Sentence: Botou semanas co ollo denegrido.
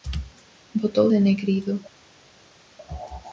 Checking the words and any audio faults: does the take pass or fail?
fail